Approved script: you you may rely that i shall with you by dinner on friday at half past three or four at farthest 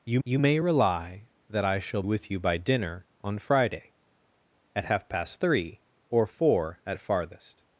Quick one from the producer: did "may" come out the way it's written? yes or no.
yes